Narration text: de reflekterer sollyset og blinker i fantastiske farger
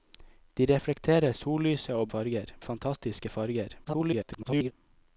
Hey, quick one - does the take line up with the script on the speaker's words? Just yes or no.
no